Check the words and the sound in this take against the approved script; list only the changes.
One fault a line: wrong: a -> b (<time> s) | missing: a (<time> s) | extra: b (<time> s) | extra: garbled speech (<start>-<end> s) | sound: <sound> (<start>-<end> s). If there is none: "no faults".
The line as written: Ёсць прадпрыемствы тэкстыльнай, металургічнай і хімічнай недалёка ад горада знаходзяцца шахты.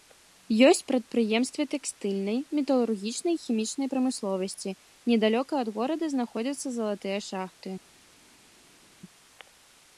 extra: прамысловасці (4.0 s)
extra: залатыя (6.8 s)